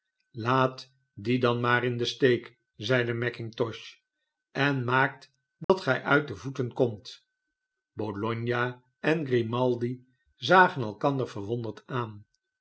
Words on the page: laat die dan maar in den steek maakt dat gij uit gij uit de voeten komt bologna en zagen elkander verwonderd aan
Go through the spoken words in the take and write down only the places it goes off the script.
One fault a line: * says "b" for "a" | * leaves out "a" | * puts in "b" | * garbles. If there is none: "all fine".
* puts in "zeide mackintosh en"
* leaves out "gij uit"
* puts in "grimaldi"